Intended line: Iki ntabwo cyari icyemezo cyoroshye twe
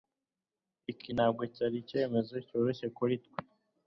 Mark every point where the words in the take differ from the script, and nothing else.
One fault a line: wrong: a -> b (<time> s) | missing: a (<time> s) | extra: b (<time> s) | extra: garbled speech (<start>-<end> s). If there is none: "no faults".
extra: kuri (3.0 s)